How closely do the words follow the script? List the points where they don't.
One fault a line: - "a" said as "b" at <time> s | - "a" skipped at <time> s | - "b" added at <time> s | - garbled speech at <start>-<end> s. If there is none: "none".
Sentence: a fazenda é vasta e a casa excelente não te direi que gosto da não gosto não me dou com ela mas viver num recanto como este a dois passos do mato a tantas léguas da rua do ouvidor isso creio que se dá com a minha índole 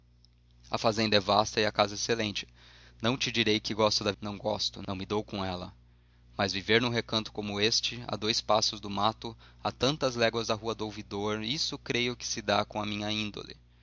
none